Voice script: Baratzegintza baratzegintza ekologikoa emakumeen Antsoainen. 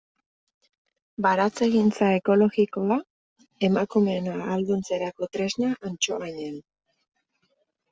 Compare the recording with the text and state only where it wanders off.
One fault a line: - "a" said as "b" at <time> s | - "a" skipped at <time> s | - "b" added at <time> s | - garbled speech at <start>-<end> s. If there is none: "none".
- "baratzegintza" skipped at 2.1 s
- "ahalduntzerako tresna" added at 4.4 s